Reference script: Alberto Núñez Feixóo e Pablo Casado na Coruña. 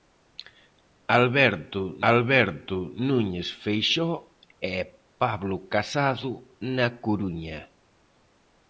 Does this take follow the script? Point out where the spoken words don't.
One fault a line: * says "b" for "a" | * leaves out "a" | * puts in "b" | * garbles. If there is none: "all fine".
* puts in "alberto"